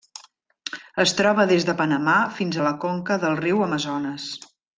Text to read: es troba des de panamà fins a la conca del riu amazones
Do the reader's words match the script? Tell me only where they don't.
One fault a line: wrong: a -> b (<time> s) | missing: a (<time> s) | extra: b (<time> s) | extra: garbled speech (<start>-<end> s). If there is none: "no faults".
no faults